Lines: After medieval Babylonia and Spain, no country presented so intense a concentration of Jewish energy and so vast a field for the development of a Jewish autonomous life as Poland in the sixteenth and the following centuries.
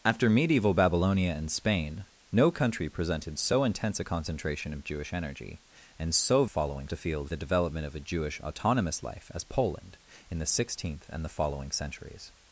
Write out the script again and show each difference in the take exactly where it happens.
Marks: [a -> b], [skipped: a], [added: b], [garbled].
After medieval Babylonia and Spain, no country presented so intense a concentration of Jewish energy and so [vast -> following] a field [skipped: for] the development of a Jewish autonomous life as Poland in the sixteenth and the following centuries.